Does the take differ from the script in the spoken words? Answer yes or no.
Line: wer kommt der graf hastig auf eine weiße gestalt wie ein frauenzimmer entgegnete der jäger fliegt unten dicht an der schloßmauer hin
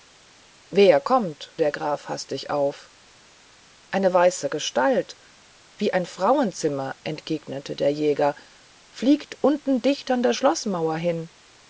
no